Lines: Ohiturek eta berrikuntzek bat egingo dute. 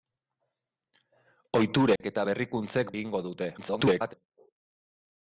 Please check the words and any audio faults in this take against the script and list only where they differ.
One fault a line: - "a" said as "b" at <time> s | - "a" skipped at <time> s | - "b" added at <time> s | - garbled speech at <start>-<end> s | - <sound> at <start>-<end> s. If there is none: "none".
- dropout at 2.0-2.0 s
- "bat" skipped at 2.9 s
- garbled speech at 3.6-4.1 s